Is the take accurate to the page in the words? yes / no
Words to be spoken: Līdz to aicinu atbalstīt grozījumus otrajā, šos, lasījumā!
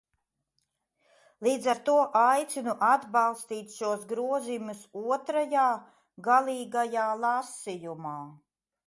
no